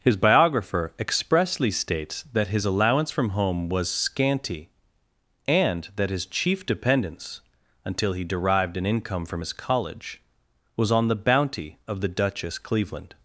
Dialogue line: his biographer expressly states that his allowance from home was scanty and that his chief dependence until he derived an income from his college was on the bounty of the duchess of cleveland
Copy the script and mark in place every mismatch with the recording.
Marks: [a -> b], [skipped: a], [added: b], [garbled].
his biographer expressly states that his allowance from home was scanty and that his chief dependence until he derived an income from his college was on the bounty of the duchess [skipped: of] cleveland